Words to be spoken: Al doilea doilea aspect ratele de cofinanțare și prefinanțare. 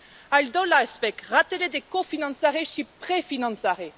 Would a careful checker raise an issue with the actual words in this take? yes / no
yes